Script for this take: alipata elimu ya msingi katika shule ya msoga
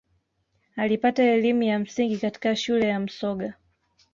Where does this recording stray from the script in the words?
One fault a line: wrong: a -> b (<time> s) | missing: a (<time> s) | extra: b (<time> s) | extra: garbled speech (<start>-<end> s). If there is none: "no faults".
no faults